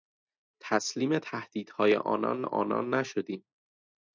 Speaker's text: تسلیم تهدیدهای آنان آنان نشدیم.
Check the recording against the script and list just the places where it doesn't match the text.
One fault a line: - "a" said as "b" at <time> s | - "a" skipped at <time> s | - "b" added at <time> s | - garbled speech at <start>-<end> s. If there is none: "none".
none